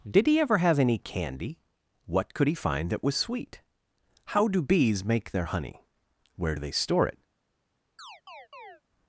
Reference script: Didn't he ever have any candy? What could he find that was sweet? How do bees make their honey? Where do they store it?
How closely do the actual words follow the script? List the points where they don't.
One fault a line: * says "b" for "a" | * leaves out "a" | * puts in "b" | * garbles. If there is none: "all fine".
* says "Did" for "Didn't"